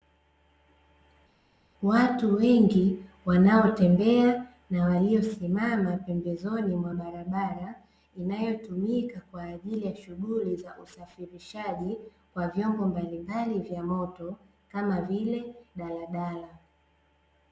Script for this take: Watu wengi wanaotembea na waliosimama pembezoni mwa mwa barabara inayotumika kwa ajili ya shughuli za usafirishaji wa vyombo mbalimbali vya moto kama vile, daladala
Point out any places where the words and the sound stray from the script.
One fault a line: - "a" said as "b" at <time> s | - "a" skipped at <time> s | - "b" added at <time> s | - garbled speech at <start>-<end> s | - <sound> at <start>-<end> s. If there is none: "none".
- "mwa" skipped at 6.9 s